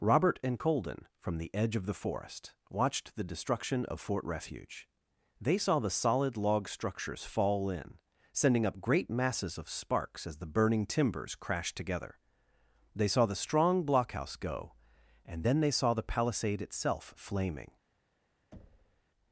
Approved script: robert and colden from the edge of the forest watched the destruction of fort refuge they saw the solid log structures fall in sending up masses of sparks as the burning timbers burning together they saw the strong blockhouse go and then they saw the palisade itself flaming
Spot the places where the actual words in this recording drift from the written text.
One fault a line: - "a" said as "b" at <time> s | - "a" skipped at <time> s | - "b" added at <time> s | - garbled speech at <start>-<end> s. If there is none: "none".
- "great" added at 8.8 s
- "burning" said as "crashed" at 11.3 s